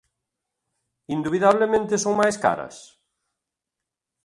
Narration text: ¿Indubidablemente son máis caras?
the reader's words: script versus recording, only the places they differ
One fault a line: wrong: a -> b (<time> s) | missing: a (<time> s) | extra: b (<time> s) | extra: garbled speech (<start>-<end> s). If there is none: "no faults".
no faults